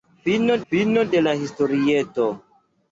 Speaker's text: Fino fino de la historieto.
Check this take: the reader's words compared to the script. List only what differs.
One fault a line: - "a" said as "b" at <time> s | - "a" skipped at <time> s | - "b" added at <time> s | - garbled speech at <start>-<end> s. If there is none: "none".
none